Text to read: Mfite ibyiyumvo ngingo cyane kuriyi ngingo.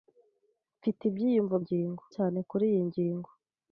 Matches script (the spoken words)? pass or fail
pass